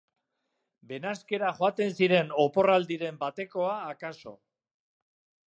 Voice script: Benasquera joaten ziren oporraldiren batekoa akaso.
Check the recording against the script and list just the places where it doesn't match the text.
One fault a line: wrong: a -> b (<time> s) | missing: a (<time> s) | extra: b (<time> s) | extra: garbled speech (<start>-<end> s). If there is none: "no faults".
no faults